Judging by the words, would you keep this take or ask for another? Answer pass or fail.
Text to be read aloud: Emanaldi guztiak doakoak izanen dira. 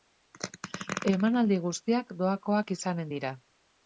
pass